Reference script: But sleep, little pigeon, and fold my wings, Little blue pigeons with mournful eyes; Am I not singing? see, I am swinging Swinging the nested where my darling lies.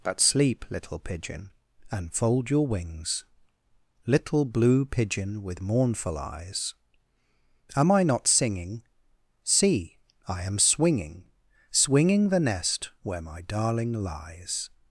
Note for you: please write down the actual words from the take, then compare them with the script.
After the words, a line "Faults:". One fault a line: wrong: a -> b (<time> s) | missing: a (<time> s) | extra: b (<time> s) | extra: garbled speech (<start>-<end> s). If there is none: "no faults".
But sleep, little pigeon, and fold your wings, Little blue pigeon with mournful eyes; Am I not singing? see, I am swinging Swinging the nest where my darling lies.
Faults:
wrong: my -> your (2.5 s)
wrong: pigeons -> pigeon (4.8 s)
wrong: nested -> nest (12.4 s)